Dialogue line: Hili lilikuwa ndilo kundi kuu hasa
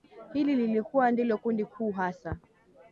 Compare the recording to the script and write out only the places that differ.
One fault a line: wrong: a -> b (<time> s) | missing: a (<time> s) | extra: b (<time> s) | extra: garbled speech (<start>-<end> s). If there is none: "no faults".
no faults